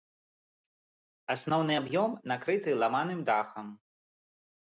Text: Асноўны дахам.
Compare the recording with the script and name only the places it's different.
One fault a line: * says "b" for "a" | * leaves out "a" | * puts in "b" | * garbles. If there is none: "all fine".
* puts in "аб'ём накрыты ламаным"